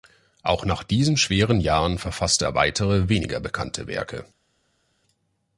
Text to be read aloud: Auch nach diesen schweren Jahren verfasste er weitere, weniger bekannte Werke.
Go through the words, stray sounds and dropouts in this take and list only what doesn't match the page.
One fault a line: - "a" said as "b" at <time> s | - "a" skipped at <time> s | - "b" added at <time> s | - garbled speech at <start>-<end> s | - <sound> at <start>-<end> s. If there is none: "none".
none